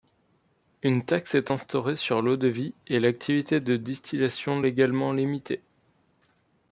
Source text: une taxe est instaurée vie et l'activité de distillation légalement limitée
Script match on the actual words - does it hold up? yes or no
no